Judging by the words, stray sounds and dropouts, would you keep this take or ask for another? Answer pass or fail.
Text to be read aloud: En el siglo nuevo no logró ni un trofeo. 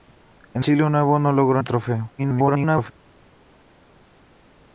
fail